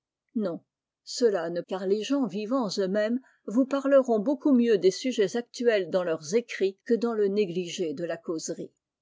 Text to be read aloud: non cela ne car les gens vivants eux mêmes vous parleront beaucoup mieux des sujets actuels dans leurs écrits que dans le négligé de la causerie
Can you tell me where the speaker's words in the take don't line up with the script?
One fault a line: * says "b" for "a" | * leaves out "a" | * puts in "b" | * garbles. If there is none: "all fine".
all fine